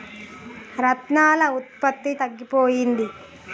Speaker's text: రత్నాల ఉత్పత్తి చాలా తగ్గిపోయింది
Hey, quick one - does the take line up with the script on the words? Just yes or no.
no